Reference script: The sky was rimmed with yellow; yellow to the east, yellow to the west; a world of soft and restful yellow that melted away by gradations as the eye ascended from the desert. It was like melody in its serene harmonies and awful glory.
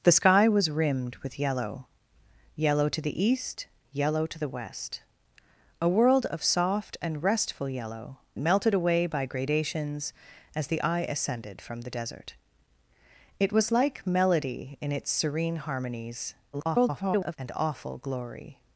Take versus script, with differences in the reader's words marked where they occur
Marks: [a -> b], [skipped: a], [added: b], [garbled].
The sky was rimmed with yellow; yellow to the east, yellow to the west; a world of soft and restful yellow [skipped: that] melted away by gradations as the eye ascended from the desert. It was like melody in its serene harmonies [garbled] and awful glory.